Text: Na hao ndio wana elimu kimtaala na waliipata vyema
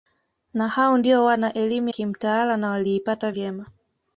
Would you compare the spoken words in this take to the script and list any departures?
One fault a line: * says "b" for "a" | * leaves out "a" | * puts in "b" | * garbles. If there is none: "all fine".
all fine